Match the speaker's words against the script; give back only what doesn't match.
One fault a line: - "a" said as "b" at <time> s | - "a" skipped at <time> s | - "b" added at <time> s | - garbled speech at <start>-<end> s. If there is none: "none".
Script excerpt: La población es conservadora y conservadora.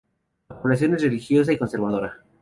- "conservadora" said as "religiosa" at 1.0 s